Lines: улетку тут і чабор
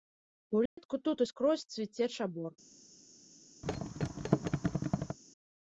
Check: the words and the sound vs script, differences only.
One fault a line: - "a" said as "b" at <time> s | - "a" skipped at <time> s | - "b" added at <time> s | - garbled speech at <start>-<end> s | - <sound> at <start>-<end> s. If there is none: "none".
- dropout at 0.7-0.8 s
- "скрозь цвіце" added at 1.3 s
- thud at 3.6-5.2 s